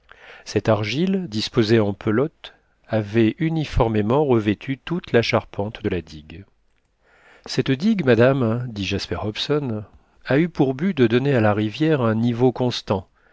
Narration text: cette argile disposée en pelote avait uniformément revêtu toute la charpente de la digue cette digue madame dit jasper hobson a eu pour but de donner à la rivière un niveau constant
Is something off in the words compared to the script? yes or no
no